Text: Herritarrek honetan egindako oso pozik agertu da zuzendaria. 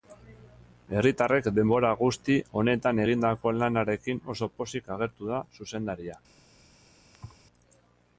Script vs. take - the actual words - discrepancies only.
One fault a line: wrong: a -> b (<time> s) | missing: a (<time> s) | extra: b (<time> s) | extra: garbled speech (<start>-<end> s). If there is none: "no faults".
extra: denbora guzti (1.6 s)
extra: lanarekin (3.6 s)